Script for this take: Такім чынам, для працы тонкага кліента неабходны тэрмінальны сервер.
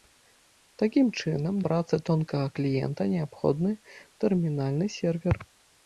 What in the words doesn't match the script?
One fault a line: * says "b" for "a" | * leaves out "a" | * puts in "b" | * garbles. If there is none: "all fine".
* leaves out "для"